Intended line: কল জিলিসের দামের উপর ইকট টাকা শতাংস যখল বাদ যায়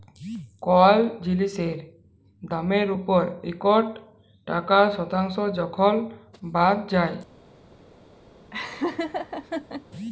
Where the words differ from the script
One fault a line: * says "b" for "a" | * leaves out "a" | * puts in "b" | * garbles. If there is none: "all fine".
all fine